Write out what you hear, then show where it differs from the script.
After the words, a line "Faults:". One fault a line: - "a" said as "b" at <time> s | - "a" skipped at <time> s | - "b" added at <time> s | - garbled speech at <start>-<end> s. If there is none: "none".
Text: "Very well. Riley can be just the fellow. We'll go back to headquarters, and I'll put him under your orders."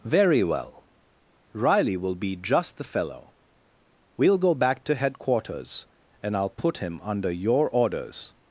"Very well. Riley will be just the fellow. We'll go back to headquarters, and I'll put him under your orders."
Faults:
- "can" said as "will" at 2.0 s